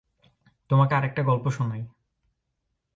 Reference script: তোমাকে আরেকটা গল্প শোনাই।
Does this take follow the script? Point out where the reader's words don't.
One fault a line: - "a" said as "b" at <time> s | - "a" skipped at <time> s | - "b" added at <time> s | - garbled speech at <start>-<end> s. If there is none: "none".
none